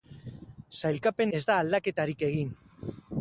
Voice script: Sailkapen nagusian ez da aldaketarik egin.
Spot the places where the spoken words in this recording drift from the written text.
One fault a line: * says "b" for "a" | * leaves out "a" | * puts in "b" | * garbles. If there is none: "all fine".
* leaves out "nagusian"